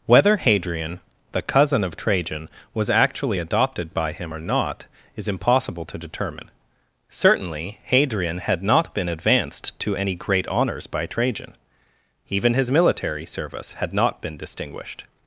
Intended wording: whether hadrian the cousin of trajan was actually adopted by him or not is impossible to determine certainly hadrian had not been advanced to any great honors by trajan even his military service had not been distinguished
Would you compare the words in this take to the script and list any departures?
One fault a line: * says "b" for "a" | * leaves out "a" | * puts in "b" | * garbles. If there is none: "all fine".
all fine